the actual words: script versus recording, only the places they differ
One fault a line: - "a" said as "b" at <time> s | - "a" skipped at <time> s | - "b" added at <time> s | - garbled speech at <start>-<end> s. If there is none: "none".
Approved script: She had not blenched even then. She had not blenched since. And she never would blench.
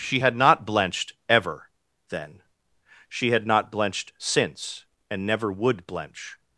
- "even" said as "ever" at 1.3 s
- "she" skipped at 5.3 s